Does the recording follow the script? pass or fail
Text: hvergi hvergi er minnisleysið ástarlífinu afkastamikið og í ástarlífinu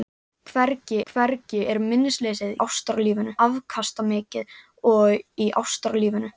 pass